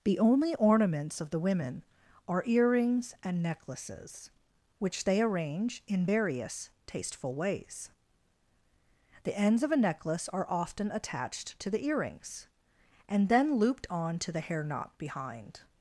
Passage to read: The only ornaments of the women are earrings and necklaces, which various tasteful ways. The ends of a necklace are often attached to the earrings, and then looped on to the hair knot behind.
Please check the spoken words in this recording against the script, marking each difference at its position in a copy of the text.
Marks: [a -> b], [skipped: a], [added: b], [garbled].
The only ornaments of the women are earrings and necklaces, which [added: they arrange in] various tasteful ways. The ends of a necklace are often attached to the earrings, and then looped on to the hair knot behind.